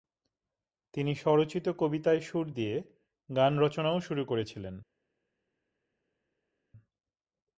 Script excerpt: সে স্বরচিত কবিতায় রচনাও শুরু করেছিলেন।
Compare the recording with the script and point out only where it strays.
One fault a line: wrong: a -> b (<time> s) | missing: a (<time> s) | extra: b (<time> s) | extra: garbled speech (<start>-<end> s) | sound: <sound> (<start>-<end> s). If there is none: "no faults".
wrong: সে -> তিনি (0.9 s)
extra: সুর দিয়ে গান (2.2 s)